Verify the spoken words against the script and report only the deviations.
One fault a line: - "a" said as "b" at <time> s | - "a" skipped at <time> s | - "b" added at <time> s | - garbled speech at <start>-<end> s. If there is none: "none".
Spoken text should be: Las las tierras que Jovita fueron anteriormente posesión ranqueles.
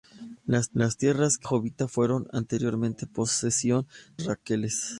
none